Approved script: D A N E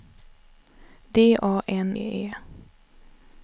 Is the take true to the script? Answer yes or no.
yes